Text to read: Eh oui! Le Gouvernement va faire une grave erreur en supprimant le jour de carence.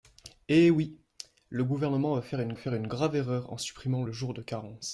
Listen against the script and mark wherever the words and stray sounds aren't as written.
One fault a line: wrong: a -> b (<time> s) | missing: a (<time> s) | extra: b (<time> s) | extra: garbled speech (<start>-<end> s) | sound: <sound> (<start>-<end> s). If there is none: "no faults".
extra: faire une (2.6 s)